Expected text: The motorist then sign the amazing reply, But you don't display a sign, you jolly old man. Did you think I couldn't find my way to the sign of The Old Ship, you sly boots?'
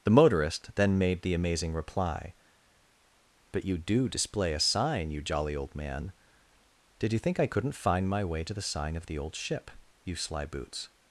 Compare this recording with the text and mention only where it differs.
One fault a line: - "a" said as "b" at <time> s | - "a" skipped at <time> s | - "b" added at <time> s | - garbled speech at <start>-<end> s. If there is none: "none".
- "sign" said as "made" at 1.0 s
- "don't" said as "do" at 3.8 s